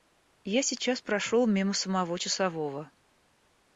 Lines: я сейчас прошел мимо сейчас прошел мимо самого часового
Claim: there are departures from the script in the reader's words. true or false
true